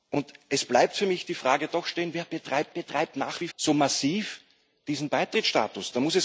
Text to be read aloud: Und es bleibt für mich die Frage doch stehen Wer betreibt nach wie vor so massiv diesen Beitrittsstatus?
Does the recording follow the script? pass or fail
fail